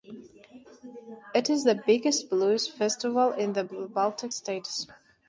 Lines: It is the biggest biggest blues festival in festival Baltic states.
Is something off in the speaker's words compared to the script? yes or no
yes